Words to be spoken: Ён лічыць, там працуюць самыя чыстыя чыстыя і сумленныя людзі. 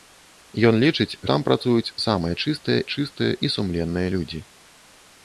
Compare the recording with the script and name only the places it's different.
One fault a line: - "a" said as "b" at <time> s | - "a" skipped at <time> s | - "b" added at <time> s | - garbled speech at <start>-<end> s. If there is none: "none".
none